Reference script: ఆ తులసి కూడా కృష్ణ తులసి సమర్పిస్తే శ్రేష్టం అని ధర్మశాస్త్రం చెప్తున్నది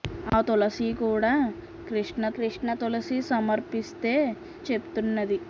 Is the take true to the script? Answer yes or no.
no